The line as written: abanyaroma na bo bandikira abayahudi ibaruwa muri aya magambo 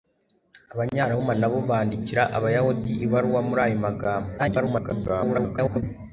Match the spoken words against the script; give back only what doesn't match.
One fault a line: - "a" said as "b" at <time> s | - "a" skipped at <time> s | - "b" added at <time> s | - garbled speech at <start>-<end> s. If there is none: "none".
- garbled speech at 4.4-5.8 s